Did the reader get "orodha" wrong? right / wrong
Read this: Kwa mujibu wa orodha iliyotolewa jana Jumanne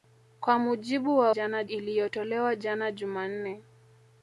wrong